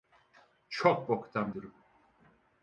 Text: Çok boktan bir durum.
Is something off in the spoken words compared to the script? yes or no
yes